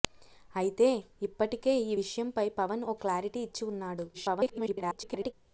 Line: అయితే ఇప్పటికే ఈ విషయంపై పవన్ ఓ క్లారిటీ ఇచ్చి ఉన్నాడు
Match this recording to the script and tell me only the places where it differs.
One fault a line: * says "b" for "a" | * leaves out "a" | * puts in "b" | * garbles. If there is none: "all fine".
* garbles